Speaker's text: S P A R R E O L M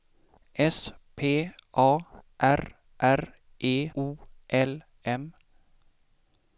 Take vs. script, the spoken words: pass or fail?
pass